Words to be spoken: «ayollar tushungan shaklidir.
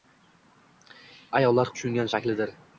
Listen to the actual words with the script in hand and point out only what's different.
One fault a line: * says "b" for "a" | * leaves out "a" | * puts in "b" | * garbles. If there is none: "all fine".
all fine